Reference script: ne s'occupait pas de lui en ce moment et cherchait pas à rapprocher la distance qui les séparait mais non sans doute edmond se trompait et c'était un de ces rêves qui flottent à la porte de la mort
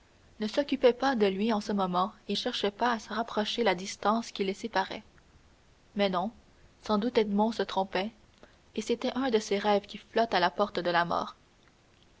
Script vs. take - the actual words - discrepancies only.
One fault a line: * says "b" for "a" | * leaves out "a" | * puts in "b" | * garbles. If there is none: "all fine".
all fine